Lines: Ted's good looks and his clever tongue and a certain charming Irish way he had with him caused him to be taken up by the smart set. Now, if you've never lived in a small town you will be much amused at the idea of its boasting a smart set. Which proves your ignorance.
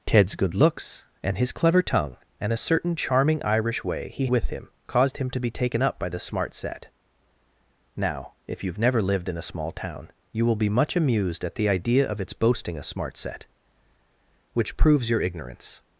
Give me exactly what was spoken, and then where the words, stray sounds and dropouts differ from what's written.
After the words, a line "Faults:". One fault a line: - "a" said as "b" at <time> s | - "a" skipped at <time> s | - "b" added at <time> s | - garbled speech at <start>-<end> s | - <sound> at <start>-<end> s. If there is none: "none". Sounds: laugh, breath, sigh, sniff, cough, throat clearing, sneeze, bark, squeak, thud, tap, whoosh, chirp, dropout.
Ted's good looks and his clever tongue and a certain charming Irish way he with him caused him to be taken up by the smart set. Now, if you've never lived in a small town you will be much amused at the idea of its boasting a smart set. Which proves your ignorance.
Faults:
- "had" skipped at 4.3 s